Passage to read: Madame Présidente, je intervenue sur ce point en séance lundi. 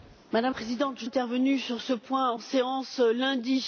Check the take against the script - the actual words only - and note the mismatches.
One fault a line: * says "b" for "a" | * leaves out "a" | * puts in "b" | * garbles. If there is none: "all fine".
all fine